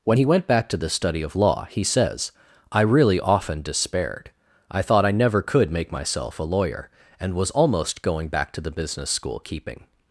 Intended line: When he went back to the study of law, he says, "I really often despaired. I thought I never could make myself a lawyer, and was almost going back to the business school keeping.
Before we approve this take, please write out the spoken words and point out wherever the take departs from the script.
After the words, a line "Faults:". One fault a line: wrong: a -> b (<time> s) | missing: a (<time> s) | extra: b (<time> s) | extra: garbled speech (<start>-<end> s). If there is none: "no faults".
When he went back to the study of law, he says, "I really often despaired. I thought I never could make myself a lawyer, and was almost going back to the business school keeping.
Faults:
no faults